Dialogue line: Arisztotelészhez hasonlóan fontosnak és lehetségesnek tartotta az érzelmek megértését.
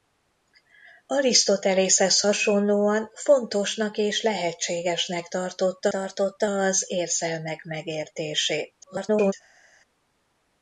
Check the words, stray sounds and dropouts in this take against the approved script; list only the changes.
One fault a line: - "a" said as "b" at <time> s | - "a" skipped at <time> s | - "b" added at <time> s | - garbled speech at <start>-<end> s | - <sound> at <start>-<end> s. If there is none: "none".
- "tartotta" added at 5.9 s
- garbled speech at 8.8-9.3 s